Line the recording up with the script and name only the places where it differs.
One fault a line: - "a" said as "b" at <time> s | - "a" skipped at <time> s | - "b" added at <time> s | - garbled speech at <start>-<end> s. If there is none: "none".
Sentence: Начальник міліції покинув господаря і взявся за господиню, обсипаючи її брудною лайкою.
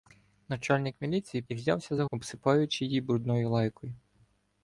- "покинув господаря" skipped at 1.4 s
- "господиню" skipped at 2.0 s